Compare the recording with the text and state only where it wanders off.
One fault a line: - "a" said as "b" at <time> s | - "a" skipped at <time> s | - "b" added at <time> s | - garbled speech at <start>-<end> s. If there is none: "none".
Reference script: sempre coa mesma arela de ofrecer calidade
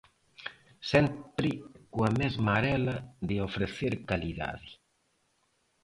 none